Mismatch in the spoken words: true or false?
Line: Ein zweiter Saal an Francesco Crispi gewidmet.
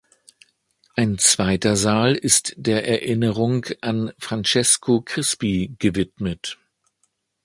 true